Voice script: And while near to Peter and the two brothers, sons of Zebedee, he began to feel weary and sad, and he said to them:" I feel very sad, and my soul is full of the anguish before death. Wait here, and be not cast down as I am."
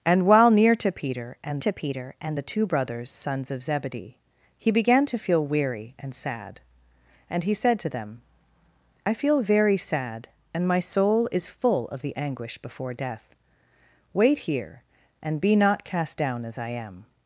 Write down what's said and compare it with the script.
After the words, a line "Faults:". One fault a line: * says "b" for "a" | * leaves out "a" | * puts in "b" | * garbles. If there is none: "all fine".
And while near to Peter and to Peter and the two brothers, sons of Zebedee, he began to feel weary and sad, and he said to them:" I feel very sad, and my soul is full of the anguish before death. Wait here, and be not cast down as I am."
Faults:
* puts in "to Peter and"